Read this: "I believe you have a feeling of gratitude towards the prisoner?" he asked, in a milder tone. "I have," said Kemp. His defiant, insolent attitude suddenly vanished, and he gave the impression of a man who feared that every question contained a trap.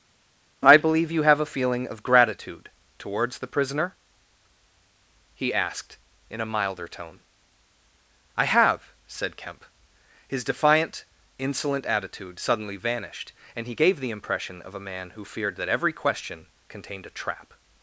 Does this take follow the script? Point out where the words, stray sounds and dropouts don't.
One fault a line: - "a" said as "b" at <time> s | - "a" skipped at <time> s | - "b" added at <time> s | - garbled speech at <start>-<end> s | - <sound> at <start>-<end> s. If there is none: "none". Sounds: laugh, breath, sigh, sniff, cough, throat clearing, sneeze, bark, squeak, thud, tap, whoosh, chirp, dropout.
none